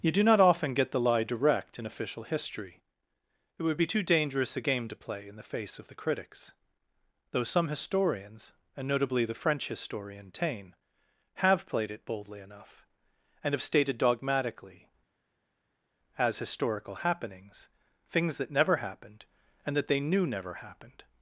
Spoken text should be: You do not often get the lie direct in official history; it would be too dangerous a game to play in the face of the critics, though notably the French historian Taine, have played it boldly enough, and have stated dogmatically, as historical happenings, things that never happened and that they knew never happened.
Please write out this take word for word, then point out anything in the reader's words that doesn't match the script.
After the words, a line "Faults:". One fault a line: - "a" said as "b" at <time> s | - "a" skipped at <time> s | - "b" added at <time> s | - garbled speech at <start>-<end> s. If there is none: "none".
You do not often get the lie direct in official history; it would be too dangerous a game to play in the face of the critics, though some historians, and notably the French historian Taine, have played it boldly enough, and have stated dogmatically, as historical happenings, things that never happened and that they knew never happened.
Faults:
- "some historians and" added at 7.4 s